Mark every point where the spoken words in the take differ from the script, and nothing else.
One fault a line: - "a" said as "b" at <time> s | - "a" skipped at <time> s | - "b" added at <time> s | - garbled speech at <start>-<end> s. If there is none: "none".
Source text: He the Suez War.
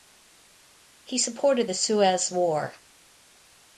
- "supported" added at 1.2 s